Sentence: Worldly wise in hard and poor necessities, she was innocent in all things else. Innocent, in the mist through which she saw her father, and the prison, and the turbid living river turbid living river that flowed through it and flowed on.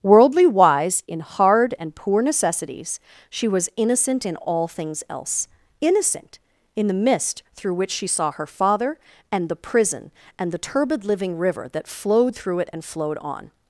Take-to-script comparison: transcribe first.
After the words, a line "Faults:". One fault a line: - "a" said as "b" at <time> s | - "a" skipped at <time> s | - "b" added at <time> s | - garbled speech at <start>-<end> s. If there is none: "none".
Worldly wise in hard and poor necessities, she was innocent in all things else. Innocent, in the mist through which she saw her father, and the prison, and the turbid living river that flowed through it and flowed on.
Faults:
- "turbid living river" skipped at 11.7 s